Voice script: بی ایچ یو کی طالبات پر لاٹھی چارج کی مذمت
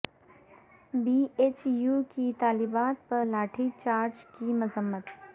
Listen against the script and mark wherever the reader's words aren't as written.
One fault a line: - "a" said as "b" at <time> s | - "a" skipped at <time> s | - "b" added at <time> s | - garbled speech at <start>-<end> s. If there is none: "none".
none